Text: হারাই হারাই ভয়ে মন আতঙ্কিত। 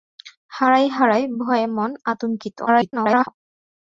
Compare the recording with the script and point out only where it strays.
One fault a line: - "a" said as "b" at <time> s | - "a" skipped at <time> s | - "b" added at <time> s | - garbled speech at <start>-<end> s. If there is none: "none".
- garbled speech at 2.7-3.3 s